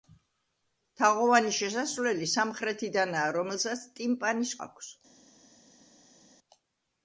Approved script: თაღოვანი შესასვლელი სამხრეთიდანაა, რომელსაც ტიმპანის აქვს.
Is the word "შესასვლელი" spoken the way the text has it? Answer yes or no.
yes